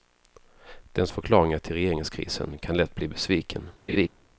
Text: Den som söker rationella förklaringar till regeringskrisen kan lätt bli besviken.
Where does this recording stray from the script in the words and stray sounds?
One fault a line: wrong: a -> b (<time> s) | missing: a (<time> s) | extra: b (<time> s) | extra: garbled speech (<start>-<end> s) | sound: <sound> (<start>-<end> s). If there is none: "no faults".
missing: som söker rationella (1.1 s)
sound: laugh (3.9-4.1 s)